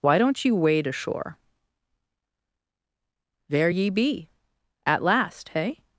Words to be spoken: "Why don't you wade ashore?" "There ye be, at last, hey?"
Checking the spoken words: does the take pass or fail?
pass